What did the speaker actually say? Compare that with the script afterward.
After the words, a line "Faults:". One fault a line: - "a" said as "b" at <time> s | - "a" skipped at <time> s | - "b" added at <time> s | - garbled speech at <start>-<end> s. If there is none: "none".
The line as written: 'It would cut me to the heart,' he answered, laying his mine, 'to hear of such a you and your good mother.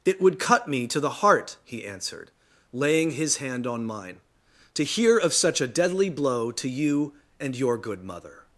'It would cut me to the heart,' he answered, laying his hand on mine, 'to hear of such a deadly blow to you and your good mother.
Faults:
- "hand on" added at 3.4 s
- "deadly blow to" added at 5.7 s